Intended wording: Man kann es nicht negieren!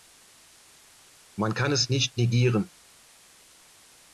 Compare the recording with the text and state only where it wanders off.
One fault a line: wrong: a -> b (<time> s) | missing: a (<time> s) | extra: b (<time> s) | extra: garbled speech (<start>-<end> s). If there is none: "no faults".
no faults